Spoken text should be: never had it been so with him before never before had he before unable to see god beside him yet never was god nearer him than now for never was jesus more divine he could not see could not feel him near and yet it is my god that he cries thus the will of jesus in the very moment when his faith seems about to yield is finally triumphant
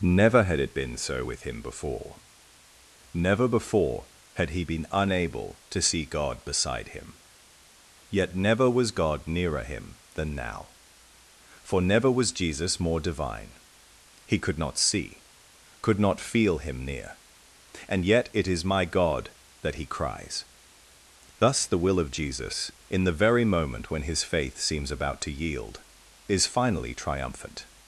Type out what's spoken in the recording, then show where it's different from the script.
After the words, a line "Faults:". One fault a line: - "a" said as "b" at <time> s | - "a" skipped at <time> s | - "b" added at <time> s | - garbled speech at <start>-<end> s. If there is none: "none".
never had it been so with him before never before had he been unable to see god beside him yet never was god nearer him than now for never was jesus more divine he could not see could not feel him near and yet it is my god that he cries thus the will of jesus in the very moment when his faith seems about to yield is finally triumphant
Faults:
- "before" said as "been" at 4.6 s